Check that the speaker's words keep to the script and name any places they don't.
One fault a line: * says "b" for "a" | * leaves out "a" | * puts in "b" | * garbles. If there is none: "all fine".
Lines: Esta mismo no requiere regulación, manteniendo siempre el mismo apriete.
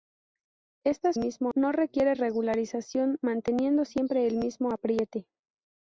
all fine